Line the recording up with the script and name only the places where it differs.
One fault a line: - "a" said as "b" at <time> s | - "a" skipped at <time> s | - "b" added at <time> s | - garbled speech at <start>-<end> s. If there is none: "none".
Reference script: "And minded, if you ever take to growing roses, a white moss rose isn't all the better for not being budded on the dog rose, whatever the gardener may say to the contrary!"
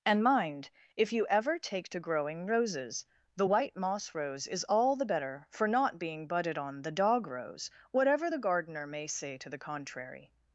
- "minded" said as "mind" at 0.2 s
- "a" said as "the" at 3.4 s
- "isn't" said as "is" at 4.5 s